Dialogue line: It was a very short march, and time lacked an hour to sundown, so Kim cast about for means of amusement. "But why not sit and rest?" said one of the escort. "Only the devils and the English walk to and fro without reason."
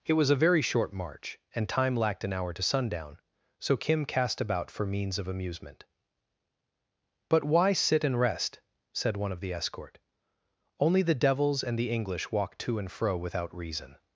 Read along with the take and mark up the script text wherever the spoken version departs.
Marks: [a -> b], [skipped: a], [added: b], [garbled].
It was a very short march, and time lacked an hour to sundown, so Kim cast about for means of amusement. "But why [skipped: not] sit and rest?" said one of the escort. "Only the devils and the English walk to and fro without reason."